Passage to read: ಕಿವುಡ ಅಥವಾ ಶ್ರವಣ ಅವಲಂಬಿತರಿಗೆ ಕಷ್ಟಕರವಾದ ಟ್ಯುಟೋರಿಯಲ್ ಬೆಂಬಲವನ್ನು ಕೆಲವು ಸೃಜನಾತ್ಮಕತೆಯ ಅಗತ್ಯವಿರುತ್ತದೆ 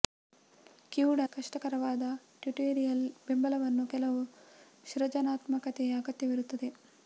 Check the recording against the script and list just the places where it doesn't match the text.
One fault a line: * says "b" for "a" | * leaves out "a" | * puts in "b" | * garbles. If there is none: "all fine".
* leaves out "ಅಥವಾ ಶ್ರವಣ ಅವಲಂಬಿತರಿಗೆ"